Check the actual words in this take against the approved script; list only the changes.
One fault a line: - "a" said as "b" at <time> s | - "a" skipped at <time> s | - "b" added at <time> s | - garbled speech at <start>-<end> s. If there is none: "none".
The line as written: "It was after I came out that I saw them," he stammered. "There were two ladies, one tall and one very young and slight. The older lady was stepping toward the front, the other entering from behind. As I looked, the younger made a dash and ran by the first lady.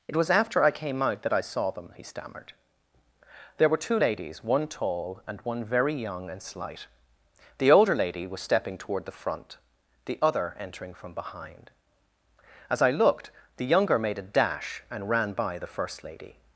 none